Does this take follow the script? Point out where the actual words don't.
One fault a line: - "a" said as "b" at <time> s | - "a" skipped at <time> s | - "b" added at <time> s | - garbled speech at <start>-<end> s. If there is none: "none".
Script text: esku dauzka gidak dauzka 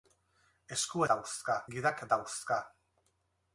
none